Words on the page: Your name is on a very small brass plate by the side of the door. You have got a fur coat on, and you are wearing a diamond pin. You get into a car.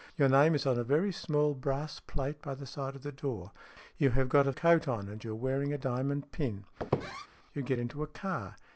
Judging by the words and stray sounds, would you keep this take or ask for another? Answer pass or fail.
fail